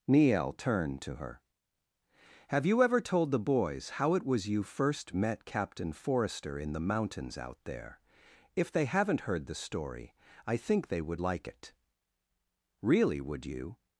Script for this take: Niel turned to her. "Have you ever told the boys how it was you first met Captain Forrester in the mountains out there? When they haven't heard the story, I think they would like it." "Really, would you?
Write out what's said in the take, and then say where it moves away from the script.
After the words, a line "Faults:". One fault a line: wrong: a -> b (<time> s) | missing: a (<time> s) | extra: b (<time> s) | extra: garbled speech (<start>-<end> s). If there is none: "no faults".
Niel turned to her. "Have you ever told the boys how it was you first met Captain Forrester in the mountains out there? If they haven't heard the story, I think they would like it." "Really, would you?
Faults:
wrong: When -> If (8.6 s)